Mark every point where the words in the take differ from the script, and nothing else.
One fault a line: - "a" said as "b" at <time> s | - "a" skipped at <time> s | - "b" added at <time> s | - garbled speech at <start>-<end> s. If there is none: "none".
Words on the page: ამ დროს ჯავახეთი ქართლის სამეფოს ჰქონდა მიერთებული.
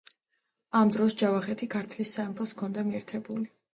none